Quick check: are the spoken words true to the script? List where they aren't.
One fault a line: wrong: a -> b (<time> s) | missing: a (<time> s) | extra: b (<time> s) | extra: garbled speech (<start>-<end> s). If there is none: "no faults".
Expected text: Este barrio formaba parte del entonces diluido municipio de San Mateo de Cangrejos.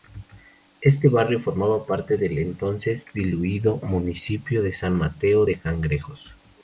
no faults